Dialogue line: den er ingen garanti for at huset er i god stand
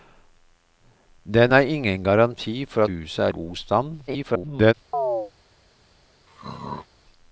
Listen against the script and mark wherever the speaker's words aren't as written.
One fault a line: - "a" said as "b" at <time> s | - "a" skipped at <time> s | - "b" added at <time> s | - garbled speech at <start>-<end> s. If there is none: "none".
- "at" skipped at 2.8 s
- "i" skipped at 3.3 s
- garbled speech at 4.1-4.7 s